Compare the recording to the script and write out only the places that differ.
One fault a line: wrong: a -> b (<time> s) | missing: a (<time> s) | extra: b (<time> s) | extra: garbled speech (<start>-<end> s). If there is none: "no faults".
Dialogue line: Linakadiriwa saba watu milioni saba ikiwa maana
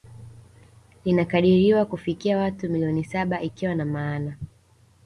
wrong: saba -> kufikia (1.9 s)
extra: na (3.7 s)